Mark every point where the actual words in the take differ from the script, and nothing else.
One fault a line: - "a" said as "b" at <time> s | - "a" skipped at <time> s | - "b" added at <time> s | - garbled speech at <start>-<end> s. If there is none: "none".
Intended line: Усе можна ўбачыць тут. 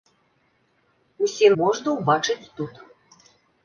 none